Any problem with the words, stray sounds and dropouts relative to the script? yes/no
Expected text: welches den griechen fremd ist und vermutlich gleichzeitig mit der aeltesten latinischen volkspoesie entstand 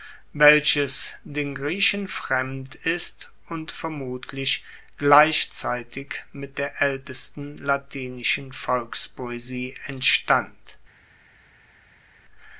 no